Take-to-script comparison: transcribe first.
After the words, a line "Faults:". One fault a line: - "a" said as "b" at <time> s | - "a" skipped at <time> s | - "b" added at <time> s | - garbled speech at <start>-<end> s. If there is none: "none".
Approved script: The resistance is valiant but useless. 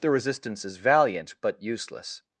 The resistance is valiant but useless.
Faults:
none